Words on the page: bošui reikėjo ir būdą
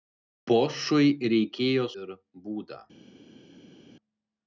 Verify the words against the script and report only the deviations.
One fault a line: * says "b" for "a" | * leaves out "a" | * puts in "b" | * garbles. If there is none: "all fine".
all fine